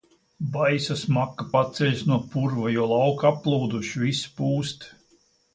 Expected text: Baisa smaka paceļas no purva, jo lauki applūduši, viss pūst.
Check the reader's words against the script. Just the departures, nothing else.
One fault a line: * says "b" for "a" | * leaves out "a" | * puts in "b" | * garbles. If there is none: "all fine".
all fine